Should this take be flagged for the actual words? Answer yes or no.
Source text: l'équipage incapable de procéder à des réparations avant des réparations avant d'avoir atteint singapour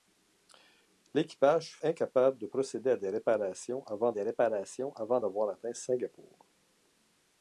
no